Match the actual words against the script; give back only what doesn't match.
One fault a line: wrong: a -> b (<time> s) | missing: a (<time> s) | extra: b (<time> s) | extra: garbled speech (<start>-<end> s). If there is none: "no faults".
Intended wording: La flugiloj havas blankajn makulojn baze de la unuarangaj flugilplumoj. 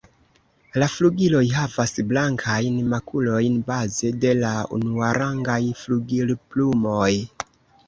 no faults